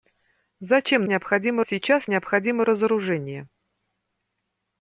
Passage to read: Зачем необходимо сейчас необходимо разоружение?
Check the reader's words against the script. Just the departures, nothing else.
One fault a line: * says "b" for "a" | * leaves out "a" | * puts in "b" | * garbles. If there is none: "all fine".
all fine